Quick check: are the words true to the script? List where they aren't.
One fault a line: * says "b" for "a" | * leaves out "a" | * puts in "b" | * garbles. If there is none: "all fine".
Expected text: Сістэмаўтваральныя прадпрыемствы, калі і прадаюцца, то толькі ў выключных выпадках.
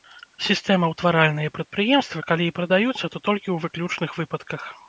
all fine